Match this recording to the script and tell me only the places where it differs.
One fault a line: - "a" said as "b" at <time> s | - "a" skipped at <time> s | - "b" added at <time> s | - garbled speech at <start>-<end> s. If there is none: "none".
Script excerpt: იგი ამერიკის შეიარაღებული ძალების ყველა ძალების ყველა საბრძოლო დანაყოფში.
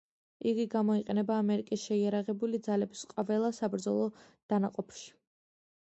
- "გამოიყენება" added at 0.8 s
- "ძალების ყველა" skipped at 3.5 s